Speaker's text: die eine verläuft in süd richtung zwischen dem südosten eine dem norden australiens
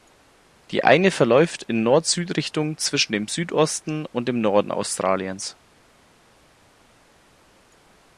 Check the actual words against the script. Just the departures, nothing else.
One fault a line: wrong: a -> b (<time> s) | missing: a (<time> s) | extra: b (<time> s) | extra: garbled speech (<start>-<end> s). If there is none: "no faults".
extra: nord (1.8 s)
wrong: eine -> und (4.1 s)